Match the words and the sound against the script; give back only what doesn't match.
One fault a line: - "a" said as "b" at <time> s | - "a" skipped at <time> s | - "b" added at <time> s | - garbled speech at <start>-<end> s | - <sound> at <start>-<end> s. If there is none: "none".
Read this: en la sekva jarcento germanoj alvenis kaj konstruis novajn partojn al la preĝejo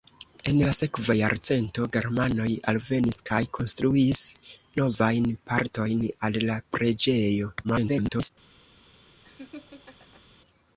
- garbled speech at 7.6-8.3 s
- laugh at 9.2-10.2 s